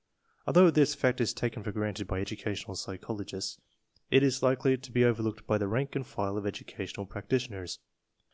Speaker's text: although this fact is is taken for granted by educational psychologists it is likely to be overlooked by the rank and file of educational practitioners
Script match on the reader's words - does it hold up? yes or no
no